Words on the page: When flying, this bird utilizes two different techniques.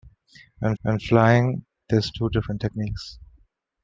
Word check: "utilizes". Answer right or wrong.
wrong